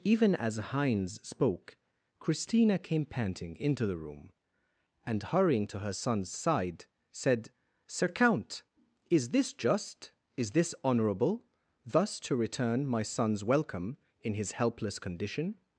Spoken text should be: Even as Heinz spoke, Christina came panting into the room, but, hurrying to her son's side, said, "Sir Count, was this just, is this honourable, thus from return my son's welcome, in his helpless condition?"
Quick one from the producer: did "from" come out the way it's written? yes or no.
no